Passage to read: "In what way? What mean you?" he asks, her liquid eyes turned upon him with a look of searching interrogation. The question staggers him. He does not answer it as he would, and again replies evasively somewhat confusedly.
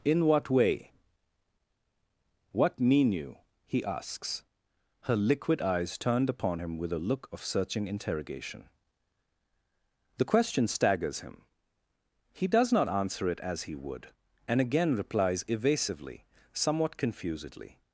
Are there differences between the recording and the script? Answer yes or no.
no